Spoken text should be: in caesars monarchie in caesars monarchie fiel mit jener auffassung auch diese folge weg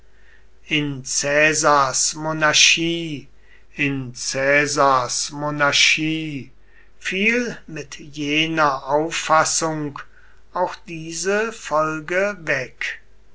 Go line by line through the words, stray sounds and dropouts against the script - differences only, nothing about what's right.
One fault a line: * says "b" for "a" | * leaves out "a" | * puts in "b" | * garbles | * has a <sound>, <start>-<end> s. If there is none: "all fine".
all fine